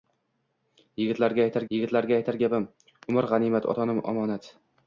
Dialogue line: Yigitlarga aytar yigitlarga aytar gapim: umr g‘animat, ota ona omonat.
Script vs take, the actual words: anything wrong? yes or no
no